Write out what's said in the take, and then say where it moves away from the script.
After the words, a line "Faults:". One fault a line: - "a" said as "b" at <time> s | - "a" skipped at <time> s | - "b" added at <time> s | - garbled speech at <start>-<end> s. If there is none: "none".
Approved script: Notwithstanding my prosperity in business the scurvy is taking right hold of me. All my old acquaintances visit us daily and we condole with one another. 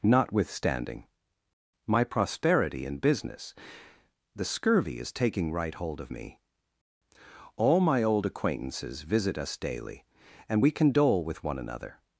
Notwithstanding my prosperity in business the scurvy is taking right hold of me. All my old acquaintances visit us daily and we condole with one another.
Faults:
none